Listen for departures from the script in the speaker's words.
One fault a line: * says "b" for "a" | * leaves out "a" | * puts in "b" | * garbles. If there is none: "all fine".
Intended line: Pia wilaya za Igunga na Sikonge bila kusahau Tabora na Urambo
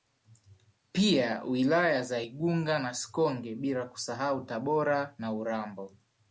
all fine